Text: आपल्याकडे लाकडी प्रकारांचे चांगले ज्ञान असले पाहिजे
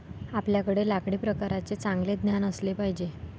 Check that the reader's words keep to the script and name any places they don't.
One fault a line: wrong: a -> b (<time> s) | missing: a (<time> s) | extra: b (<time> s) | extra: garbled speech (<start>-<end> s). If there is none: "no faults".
no faults